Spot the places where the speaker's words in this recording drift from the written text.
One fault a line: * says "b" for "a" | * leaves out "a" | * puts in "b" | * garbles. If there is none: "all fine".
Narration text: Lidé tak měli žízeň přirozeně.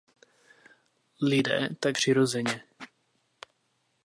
* leaves out "měli žízeň"